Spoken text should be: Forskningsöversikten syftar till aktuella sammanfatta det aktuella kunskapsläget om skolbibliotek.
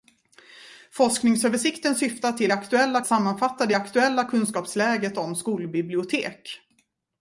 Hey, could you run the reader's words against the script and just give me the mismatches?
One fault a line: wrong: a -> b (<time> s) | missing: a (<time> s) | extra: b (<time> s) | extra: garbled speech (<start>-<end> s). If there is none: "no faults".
no faults